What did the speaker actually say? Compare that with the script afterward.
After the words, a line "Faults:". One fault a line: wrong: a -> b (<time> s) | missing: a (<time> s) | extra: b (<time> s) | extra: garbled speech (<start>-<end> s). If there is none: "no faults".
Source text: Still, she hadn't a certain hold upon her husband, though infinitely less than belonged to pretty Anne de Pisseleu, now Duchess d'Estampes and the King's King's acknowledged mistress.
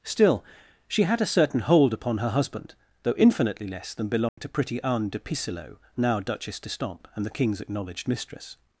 Still, she had a certain hold upon her husband, though infinitely less than belonged to pretty Anne de Pisseleu, now Duchess d'Estampes and the King's acknowledged mistress.
Faults:
wrong: hadn't -> had (1.0 s)
missing: King's (7.6 s)